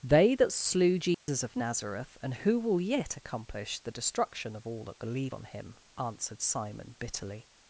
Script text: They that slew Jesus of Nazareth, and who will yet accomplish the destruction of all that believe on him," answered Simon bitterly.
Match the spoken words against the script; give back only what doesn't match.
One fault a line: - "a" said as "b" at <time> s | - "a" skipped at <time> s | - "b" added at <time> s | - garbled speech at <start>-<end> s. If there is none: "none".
none